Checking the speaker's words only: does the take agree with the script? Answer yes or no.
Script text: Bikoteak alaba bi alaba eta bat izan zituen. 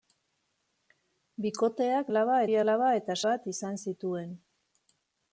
yes